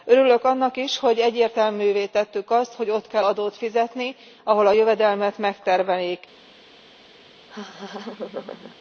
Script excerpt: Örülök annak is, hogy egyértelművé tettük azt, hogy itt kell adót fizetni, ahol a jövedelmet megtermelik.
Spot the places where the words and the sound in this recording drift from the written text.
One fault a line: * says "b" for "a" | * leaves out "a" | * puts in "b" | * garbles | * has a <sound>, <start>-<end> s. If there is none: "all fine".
* says "ott" for "itt"
* has a laugh, 7.5-8.8 s